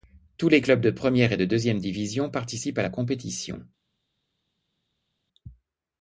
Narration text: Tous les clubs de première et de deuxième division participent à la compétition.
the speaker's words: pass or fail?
pass